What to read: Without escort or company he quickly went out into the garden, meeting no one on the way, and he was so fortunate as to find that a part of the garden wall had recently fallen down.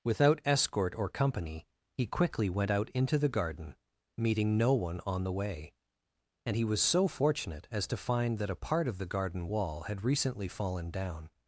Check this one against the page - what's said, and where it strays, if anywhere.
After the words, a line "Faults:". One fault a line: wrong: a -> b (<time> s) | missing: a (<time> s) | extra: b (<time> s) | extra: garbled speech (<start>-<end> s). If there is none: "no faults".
Without escort or company he quickly went out into the garden, meeting no one on the way, and he was so fortunate as to find that a part of the garden wall had recently fallen down.
Faults:
no faults